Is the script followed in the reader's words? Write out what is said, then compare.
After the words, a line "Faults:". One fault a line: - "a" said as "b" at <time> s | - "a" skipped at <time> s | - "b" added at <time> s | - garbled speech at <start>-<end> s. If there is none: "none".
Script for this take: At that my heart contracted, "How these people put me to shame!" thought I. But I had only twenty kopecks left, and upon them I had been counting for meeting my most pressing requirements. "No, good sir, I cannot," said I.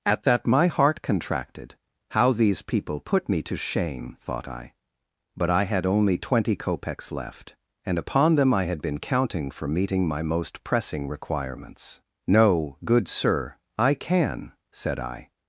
At that my heart contracted, "How these people put me to shame!" thought I. But I had only twenty kopecks left, and upon them I had been counting for meeting my most pressing requirements. "No, good sir, I can," said I.
Faults:
- "cannot" said as "can" at 13.9 s